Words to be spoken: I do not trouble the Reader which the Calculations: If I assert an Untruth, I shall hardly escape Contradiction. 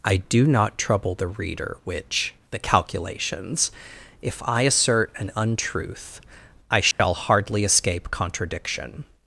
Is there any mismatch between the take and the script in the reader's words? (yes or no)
no